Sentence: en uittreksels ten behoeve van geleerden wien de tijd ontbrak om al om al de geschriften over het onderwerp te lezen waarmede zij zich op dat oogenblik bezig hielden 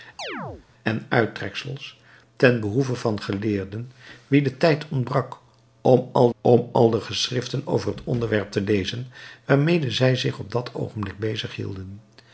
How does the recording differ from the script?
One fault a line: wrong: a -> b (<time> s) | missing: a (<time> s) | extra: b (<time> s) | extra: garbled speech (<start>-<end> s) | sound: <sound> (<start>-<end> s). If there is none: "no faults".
sound: chirp (0.2-0.7 s)